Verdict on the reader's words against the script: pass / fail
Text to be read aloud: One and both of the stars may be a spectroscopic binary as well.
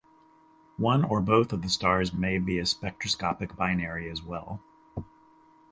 fail